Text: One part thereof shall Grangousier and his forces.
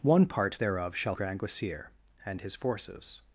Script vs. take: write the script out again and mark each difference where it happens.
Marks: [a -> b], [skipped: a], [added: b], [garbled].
One part thereof shall Grangousier and his forces.